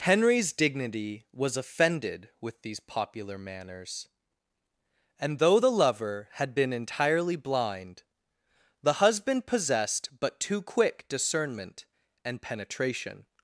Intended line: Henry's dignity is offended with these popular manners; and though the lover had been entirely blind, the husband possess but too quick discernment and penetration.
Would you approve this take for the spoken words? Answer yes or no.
no